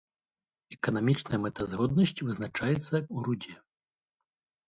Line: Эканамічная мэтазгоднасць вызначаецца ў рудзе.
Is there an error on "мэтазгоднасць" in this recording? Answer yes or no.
no